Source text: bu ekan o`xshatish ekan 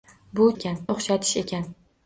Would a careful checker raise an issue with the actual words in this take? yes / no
no